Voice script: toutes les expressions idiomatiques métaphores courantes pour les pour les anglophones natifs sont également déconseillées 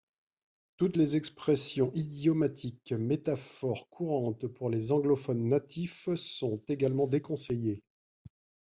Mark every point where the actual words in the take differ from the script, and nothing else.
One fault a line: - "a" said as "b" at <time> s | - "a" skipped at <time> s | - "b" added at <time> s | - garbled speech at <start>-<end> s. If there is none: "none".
- "pour les" skipped at 4.9 s